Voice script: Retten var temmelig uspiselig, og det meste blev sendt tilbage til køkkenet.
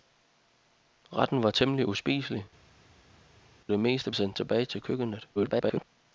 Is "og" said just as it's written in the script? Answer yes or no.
no